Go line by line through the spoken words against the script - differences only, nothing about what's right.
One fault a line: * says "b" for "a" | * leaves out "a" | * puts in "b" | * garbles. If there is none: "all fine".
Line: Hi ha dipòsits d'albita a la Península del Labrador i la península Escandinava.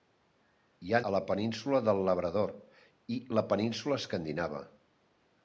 * leaves out "dipòsits d'albita"